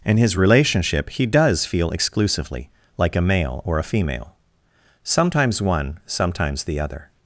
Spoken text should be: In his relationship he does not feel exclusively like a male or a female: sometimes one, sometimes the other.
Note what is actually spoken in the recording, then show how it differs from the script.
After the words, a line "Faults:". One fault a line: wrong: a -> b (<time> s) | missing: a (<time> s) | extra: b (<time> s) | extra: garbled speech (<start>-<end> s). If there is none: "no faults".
In his relationship he does feel exclusively like a male or a female: sometimes one, sometimes the other.
Faults:
missing: not (1.6 s)